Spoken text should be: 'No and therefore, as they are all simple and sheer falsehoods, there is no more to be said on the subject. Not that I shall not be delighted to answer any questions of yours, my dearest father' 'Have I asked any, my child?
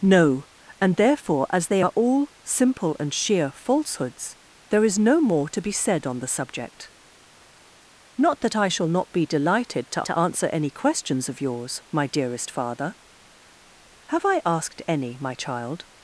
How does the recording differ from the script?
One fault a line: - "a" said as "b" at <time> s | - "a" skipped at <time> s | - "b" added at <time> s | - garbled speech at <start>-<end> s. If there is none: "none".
- "to" added at 10.0 s